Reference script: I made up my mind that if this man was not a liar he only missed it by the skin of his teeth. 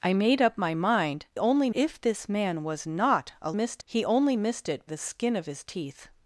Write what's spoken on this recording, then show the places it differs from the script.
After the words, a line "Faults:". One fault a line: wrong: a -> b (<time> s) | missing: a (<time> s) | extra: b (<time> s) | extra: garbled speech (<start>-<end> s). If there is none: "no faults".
I made up my mind only if this man was not a missed he only missed it the skin of his teeth.
Faults:
wrong: that -> only (1.4 s)
wrong: liar -> missed (3.5 s)
missing: by (4.9 s)